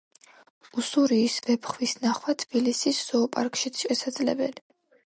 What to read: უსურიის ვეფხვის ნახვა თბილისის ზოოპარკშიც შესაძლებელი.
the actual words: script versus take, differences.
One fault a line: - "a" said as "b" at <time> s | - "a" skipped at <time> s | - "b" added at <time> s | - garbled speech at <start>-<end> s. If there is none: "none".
none